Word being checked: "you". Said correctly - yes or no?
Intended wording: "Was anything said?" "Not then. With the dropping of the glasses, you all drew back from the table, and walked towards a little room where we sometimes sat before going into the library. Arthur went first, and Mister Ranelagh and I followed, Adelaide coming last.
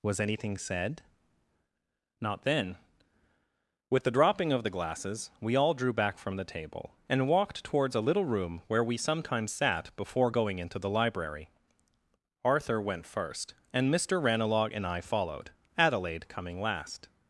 no